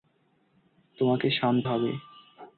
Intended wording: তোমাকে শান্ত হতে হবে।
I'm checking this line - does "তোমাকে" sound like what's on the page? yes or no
yes